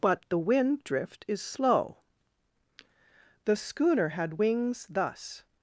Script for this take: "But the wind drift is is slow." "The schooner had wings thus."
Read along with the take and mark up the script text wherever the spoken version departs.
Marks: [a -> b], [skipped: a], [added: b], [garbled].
"But the wind drift is [skipped: is] slow." "The schooner had wings thus."